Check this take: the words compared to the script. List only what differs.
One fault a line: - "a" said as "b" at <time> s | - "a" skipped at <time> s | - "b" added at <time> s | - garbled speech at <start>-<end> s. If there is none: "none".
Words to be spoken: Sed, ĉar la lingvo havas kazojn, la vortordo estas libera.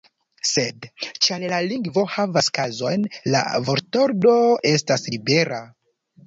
none